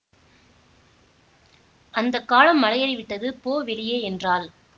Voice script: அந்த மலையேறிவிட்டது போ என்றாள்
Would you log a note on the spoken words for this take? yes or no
yes